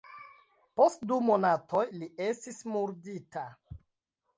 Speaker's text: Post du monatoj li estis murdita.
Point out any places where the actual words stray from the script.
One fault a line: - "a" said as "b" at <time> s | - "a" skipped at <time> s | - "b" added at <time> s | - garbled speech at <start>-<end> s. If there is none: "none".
none